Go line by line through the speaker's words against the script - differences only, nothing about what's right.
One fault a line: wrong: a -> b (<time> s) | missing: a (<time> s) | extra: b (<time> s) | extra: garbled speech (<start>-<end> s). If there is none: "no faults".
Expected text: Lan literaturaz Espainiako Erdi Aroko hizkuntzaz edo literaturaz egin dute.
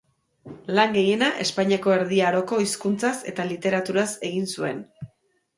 wrong: literaturaz -> gehiena (0.9 s)
wrong: edo -> eta (3.3 s)
wrong: dute -> zuen (4.5 s)